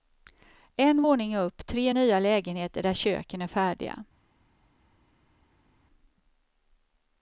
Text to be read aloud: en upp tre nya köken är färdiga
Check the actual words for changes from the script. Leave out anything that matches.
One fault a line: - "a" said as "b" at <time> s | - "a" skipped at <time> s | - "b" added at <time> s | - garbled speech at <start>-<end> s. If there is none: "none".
- "våning" added at 1.0 s
- "lägenheter där" added at 2.2 s